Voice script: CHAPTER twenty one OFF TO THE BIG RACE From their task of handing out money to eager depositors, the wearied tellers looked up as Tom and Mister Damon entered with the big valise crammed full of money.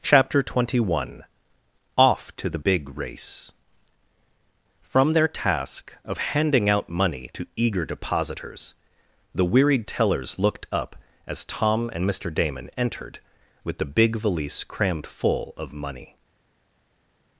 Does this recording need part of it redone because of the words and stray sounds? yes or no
no